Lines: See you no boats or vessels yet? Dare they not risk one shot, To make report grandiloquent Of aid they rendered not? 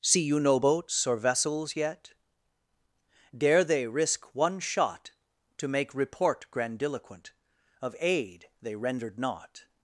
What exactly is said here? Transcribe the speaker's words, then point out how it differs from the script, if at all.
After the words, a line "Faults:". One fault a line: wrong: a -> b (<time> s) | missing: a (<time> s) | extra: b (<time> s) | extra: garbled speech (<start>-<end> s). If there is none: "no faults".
See you no boats or vessels yet? Dare they risk one shot, To make report grandiloquent Of aid they rendered not?
Faults:
missing: not (3.9 s)